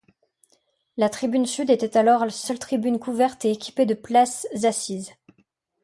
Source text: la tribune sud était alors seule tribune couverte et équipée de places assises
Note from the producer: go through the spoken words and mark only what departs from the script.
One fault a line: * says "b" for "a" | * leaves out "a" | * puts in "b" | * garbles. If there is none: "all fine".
all fine